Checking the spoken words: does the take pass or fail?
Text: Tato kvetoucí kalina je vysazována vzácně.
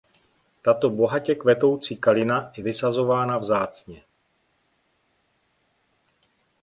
fail